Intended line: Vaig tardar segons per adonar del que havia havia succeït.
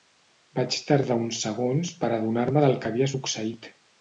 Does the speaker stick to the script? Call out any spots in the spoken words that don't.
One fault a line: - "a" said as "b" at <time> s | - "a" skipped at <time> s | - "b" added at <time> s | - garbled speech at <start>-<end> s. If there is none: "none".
- "uns" added at 1.2 s
- "me" added at 2.5 s
- "havia" skipped at 3.1 s